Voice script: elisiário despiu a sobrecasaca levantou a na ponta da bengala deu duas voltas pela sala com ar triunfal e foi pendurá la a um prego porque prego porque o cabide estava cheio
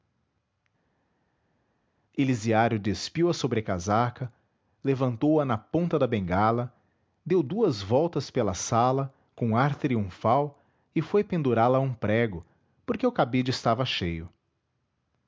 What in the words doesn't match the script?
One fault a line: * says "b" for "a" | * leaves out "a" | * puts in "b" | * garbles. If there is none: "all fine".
* leaves out "prego porque"